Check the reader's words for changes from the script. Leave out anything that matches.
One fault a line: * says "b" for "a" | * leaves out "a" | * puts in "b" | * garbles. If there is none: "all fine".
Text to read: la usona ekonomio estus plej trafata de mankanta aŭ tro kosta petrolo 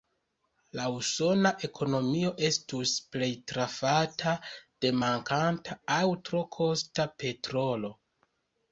all fine